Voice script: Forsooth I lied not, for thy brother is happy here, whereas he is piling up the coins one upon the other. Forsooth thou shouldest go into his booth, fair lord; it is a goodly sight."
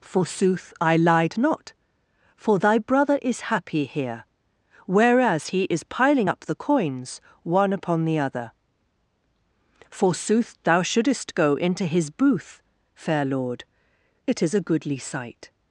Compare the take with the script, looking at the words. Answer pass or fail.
pass